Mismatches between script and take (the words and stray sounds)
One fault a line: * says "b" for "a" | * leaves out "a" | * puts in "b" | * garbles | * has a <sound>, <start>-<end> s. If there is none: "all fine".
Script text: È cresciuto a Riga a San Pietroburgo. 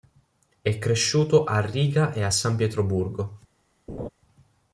* puts in "e"
* has a laugh, 3.9-4.1 s